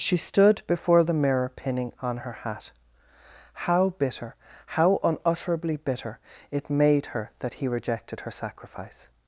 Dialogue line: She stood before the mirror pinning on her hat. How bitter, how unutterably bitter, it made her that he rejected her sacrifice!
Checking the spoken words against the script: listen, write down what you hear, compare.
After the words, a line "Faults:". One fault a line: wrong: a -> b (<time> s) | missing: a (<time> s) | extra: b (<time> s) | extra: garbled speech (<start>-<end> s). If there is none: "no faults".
She stood before the mirror pinning on her hat. How bitter, how unutterably bitter, it made her that he rejected her sacrifice!
Faults:
no faults